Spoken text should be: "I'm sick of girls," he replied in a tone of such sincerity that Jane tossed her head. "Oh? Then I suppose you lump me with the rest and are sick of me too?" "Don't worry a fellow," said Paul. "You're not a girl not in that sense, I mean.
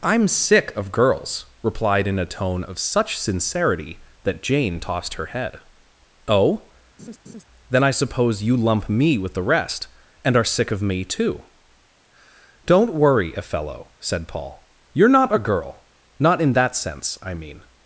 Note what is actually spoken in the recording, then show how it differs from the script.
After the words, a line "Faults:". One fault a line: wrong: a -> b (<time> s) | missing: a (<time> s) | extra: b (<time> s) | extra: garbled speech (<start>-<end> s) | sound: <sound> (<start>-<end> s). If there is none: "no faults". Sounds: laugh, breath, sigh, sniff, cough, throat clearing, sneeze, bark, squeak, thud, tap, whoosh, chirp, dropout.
"I'm sick of girls," replied in a tone of such sincerity that Jane tossed her head. "Oh? Then I suppose you lump me with the rest and are sick of me too?" "Don't worry a fellow," said Paul. "You're not a girl not in that sense, I mean.
Faults:
missing: he (1.4 s)
sound: laugh (7.0-7.4 s)